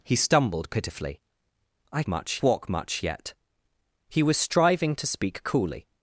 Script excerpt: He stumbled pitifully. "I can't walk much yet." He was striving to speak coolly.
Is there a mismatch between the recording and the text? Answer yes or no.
yes